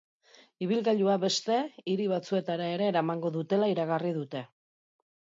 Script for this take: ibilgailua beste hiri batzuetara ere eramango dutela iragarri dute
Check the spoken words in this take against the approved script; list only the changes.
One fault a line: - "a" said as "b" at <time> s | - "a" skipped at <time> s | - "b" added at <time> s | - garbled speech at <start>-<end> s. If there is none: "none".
none